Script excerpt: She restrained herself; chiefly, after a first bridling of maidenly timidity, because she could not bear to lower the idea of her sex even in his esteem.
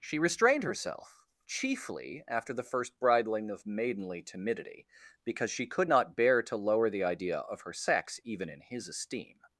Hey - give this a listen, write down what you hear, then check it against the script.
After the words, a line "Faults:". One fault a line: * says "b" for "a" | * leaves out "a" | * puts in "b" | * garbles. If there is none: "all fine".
She restrained herself; chiefly, after the first bridling of maidenly timidity, because she could not bear to lower the idea of her sex even in his esteem.
Faults:
* says "the" for "a"